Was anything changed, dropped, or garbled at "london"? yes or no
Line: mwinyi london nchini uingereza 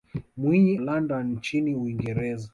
no